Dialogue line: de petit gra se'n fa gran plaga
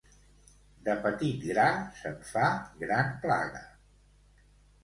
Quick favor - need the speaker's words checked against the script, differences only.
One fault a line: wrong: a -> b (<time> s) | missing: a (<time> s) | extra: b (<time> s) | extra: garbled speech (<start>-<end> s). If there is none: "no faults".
no faults